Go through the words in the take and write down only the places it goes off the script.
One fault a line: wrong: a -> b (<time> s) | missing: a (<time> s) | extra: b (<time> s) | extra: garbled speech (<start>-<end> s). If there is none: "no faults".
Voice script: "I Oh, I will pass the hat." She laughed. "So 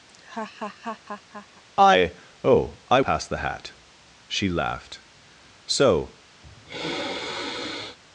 missing: will (3.0 s)